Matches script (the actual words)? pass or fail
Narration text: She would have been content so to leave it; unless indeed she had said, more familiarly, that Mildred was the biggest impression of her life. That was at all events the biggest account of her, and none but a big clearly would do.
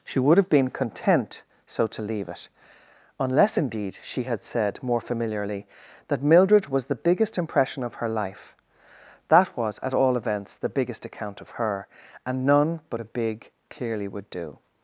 pass